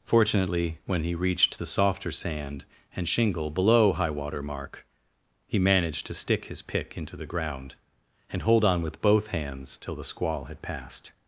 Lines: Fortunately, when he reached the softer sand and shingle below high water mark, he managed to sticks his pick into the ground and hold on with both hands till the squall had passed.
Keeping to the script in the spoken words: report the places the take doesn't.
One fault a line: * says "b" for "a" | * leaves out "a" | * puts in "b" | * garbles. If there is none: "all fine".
* says "stick" for "sticks"